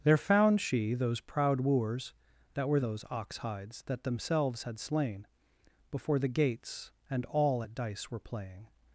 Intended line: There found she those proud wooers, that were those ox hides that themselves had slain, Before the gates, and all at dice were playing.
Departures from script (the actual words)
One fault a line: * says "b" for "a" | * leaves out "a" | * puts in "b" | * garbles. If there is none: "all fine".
all fine